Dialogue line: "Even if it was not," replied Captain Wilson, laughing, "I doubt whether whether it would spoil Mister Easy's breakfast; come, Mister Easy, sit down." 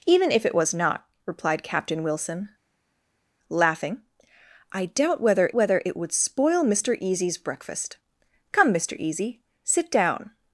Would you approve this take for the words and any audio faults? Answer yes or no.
yes